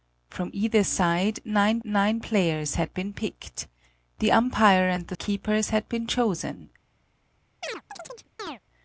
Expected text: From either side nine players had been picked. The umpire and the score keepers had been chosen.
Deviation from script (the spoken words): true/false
true